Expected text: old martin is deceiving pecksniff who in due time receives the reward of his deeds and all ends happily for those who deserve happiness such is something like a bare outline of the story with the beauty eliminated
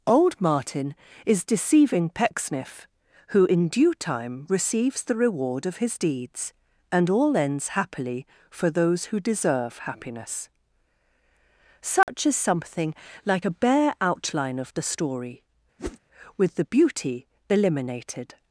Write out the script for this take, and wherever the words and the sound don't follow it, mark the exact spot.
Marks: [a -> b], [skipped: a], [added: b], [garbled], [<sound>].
old martin is deceiving pecksniff who in due time receives the reward of his deeds and all ends happily for those who deserve happiness such [dropout] is something like a bare outline of the story [whoosh] with the beauty eliminated